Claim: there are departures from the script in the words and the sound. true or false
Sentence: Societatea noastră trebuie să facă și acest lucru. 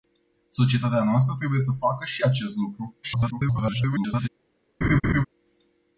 true